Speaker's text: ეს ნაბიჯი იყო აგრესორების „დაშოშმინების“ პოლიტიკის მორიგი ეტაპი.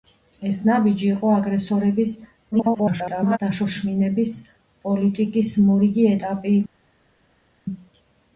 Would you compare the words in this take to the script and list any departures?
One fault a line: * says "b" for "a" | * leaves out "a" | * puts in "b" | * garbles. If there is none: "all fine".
* garbles